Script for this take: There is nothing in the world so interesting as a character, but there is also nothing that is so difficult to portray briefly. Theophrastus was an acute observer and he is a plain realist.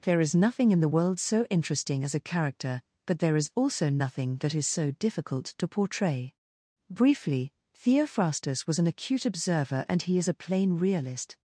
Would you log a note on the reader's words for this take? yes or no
no